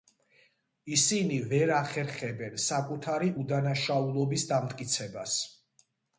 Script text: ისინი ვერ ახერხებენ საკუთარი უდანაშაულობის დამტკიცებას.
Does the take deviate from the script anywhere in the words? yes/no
no